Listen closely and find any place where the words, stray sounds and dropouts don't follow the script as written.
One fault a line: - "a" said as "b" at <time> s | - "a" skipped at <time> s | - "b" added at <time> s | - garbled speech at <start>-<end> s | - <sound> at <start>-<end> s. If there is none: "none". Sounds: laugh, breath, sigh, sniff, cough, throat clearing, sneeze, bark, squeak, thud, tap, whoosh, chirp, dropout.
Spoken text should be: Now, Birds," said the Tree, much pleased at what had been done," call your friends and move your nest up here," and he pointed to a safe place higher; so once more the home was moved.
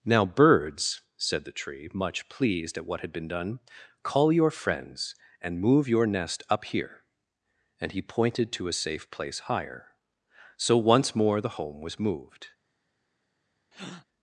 - breath at 13.7-14.1 s